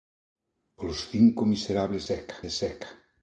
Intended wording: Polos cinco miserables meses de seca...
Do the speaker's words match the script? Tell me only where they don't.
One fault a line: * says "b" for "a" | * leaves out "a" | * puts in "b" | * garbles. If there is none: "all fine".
* says "seca" for "meses"